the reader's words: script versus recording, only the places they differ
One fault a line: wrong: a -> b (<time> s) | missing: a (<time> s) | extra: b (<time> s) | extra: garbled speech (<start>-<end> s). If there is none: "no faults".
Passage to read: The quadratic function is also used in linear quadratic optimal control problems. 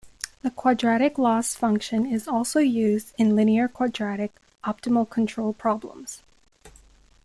extra: loss (1.2 s)